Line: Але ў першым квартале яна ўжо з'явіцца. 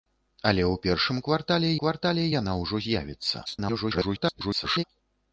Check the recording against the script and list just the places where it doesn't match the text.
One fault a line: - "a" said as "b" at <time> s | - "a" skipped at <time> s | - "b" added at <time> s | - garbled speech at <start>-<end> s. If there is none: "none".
- "квартале" added at 1.8 s
- garbled speech at 3.5-4.8 s